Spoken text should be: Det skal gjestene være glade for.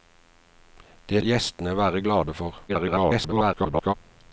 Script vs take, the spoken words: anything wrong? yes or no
yes